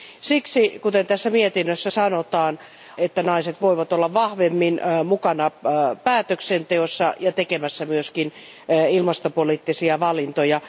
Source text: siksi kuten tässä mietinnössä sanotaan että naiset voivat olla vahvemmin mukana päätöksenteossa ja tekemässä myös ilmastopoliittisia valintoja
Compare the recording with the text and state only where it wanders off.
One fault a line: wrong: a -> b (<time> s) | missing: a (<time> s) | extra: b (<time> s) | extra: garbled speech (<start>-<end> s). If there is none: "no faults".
no faults